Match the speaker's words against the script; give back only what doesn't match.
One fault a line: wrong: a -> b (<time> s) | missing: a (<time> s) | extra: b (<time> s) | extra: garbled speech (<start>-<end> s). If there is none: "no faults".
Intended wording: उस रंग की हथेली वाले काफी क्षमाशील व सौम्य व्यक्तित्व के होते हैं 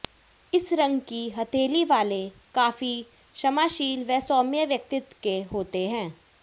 wrong: उस -> इस (0.5 s)